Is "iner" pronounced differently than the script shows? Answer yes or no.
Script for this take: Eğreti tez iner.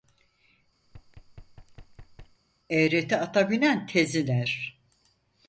no